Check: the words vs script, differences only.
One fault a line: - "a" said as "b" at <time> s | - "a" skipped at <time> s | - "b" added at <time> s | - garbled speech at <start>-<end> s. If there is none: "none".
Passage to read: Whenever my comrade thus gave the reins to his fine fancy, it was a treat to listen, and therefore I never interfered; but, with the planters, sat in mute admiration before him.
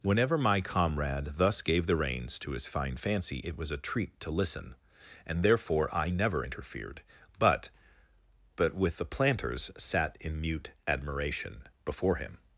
- "but" added at 8.5 s